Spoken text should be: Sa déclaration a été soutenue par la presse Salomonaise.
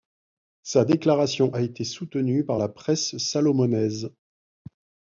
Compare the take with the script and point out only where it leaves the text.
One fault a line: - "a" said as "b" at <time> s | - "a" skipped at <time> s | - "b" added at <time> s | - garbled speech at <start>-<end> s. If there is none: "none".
none